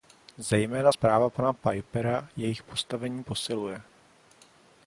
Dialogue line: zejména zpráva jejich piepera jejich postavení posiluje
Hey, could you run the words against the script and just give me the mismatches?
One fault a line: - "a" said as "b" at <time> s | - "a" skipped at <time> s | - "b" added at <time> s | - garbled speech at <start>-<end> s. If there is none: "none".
- "jejich" said as "pana" at 1.3 s